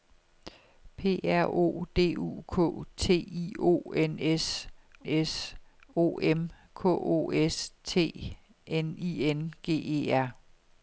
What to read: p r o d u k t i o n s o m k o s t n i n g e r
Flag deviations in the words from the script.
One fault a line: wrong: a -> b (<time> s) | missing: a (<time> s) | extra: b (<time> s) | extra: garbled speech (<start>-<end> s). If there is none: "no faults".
extra: s (5.1 s)